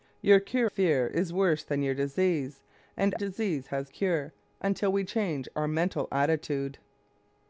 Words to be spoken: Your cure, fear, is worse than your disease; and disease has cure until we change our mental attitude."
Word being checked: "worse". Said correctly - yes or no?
yes